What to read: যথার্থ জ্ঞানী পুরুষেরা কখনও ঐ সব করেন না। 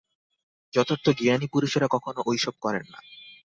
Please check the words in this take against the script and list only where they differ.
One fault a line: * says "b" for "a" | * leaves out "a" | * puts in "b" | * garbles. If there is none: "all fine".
all fine